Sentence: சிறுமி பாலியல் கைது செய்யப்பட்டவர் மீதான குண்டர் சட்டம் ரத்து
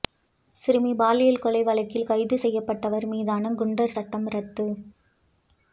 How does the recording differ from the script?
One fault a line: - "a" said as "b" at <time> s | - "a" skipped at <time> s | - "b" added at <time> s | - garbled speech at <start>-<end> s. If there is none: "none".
- "கொலை வழக்கில்" added at 1.4 s